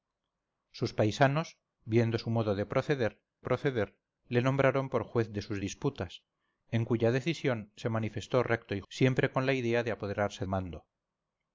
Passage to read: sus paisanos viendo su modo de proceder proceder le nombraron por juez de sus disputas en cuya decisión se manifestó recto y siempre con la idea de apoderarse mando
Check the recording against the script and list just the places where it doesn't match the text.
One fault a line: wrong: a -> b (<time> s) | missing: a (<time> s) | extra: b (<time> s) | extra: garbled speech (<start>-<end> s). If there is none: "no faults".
no faults